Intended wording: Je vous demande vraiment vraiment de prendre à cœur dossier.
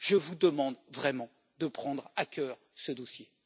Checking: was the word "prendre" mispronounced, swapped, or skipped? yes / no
no